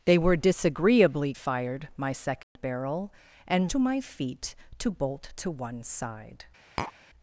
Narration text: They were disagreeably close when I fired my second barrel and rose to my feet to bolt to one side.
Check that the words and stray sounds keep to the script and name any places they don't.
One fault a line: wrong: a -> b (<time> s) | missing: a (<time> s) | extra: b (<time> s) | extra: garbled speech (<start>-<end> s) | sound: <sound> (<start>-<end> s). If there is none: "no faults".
missing: close when I (1.4 s)
sound: dropout (2.4-2.6 s)
missing: rose (3.7 s)
sound: tap (6.8-6.9 s)